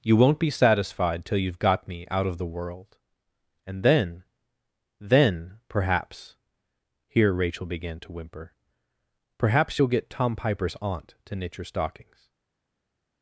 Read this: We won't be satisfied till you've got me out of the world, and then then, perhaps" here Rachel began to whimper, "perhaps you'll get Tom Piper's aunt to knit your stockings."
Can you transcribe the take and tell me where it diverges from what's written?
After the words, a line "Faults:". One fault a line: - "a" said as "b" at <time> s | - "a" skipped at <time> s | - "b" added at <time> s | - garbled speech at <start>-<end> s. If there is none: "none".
You won't be satisfied till you've got me out of the world, and then then, perhaps" here Rachel began to whimper, "perhaps you'll get Tom Piper's aunt to knit your stockings."
Faults:
- "We" said as "You" at 0.0 s